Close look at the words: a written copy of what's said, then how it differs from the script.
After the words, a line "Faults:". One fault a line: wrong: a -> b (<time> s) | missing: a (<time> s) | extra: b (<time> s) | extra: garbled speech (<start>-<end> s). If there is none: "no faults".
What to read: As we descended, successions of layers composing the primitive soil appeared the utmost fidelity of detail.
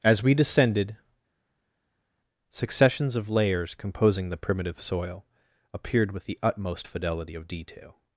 As we descended, successions of layers composing the primitive soil appeared with the utmost fidelity of detail.
Faults:
extra: with (6.1 s)